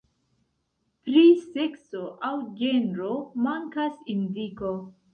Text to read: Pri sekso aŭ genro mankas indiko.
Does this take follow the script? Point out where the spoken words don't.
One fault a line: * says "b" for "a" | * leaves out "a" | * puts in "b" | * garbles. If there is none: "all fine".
all fine